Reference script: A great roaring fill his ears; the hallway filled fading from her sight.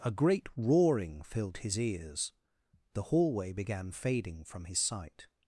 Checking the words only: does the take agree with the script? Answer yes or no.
no